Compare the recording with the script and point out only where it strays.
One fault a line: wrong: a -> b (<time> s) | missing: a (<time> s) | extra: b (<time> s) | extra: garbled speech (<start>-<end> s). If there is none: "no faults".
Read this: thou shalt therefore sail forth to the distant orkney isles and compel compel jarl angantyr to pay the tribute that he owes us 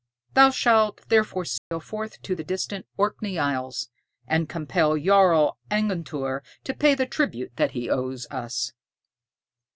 missing: compel (5.0 s)